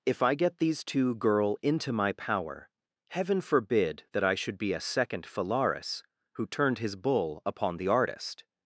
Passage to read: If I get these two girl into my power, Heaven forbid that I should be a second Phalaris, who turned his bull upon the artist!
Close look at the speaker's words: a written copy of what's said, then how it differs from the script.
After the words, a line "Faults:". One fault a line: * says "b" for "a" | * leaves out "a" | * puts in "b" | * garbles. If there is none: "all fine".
If I get these two girl into my power, Heaven forbid that I should be a second Phalaris, who turned his bull upon the artist!
Faults:
all fine